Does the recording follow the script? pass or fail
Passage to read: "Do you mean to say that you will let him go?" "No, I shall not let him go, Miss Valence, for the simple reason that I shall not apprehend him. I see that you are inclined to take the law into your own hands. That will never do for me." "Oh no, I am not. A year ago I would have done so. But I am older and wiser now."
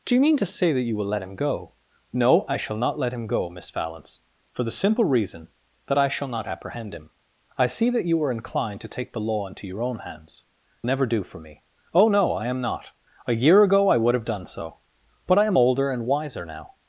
fail